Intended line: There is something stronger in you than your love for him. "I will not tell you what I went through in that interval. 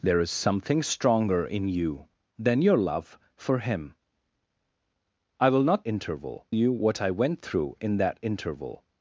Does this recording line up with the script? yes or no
no